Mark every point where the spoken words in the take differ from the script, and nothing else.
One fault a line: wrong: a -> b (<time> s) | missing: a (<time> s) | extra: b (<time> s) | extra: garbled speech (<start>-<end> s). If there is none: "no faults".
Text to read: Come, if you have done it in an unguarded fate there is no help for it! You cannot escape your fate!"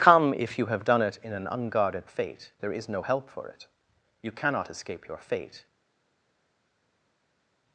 no faults